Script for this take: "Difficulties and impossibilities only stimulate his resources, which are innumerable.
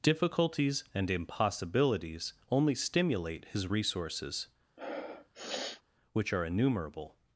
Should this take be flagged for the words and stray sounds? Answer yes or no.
yes